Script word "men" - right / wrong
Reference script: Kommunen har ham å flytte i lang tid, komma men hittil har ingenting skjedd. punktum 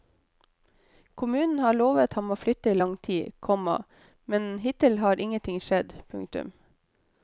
right